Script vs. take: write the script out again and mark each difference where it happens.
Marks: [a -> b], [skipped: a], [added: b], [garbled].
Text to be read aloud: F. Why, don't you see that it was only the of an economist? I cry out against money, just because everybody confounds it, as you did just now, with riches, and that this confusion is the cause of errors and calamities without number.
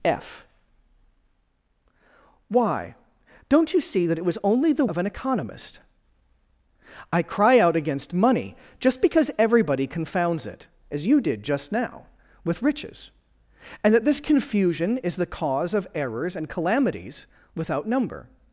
F. Why, don't you see that it was only the of an economist? I cry out against money, just because everybody confounds it, as you did just now, with riches, and that this confusion is the cause of errors and calamities without number.